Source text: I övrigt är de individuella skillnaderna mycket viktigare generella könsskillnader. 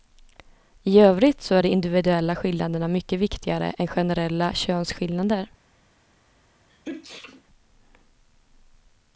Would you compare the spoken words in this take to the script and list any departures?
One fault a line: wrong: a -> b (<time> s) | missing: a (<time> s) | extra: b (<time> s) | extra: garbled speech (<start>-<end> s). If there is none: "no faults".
extra: så (1.4 s)
extra: än (3.8 s)